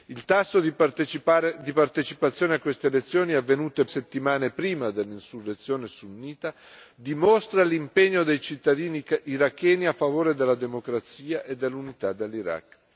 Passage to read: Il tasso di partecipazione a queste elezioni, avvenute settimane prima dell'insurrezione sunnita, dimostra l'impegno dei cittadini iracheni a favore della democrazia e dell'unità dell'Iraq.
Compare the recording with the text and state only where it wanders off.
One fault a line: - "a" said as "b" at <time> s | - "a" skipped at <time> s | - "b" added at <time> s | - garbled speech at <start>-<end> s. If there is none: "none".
none